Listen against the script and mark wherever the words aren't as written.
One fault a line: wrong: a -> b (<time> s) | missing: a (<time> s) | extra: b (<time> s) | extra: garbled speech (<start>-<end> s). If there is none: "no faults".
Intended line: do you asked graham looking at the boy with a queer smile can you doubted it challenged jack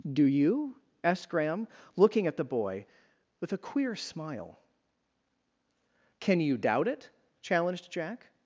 wrong: doubted -> doubt (6.6 s)